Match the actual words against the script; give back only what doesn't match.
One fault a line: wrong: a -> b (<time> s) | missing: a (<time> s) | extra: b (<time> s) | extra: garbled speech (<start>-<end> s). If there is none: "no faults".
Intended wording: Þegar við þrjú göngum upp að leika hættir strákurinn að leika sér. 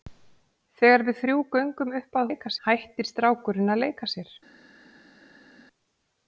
no faults